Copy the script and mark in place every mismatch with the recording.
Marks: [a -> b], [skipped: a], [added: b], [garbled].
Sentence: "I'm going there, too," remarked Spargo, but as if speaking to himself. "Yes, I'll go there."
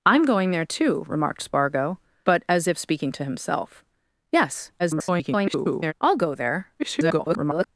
"I'm going there, too," remarked Spargo, but as if speaking to himself. "Yes, [garbled] I'll go there." [garbled]